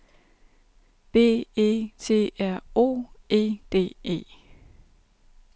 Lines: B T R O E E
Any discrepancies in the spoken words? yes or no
yes